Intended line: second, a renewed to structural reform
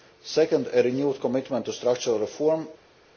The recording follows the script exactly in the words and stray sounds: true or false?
false